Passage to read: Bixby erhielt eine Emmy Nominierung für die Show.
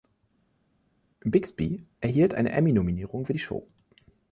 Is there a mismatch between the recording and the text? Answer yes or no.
no